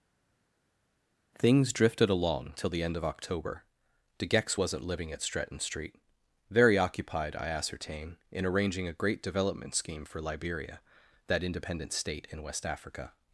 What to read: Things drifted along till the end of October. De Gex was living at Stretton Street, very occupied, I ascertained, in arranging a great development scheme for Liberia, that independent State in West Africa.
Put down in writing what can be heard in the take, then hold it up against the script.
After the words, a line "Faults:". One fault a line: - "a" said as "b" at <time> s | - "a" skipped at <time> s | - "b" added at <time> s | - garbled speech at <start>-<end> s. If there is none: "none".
Things drifted along till the end of October. De Gex wasn't living at Stretton Street, very occupied, I ascertain, in arranging a great development scheme for Liberia, that independent State in West Africa.
Faults:
- "was" said as "wasn't" at 4.6 s
- "ascertained" said as "ascertain" at 7.5 s